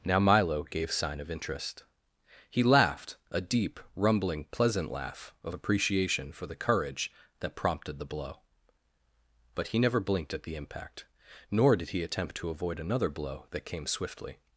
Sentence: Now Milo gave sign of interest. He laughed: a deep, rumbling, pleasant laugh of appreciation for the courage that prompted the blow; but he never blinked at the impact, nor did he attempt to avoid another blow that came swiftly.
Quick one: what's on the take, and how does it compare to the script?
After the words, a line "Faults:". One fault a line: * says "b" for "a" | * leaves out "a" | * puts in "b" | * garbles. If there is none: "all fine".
Now Milo gave sign of interest. He laughed: a deep, rumbling, pleasant laugh of appreciation for the courage that prompted the blow; but he never blinked at the impact, nor did he attempt to avoid another blow that came swiftly.
Faults:
all fine